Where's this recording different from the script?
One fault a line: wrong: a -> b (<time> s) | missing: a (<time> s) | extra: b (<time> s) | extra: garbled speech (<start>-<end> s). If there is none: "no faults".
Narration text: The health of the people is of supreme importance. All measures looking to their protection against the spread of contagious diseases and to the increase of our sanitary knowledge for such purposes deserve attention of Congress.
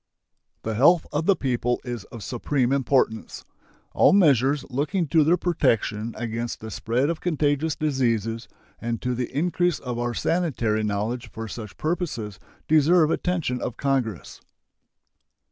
no faults